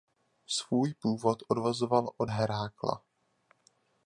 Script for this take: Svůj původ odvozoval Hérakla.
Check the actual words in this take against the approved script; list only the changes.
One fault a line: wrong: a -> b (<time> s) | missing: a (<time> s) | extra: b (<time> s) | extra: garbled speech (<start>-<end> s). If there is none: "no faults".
extra: od (2.2 s)